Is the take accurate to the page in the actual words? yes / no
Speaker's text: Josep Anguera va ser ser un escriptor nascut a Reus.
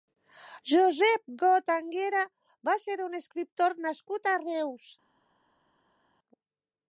no